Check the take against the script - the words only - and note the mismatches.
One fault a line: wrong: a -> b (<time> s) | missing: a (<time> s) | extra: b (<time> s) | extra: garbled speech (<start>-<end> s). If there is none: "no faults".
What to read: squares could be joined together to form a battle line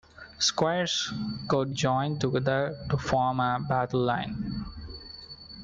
missing: be (1.8 s)